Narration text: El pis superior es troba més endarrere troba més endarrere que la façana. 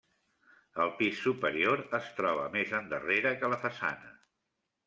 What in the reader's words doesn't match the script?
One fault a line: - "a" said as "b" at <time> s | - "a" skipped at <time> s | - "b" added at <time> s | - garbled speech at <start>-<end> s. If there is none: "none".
- "troba més endarrere" skipped at 3.4 s